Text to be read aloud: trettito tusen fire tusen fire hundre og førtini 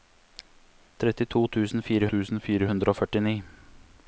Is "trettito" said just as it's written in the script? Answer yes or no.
yes